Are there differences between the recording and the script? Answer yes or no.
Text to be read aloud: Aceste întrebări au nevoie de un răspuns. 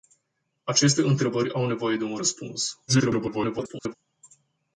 yes